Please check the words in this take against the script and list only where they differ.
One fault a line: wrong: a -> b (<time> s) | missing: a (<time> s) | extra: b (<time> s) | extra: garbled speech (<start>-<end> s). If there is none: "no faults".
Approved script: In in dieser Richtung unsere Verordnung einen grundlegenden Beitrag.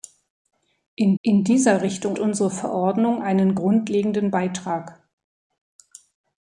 no faults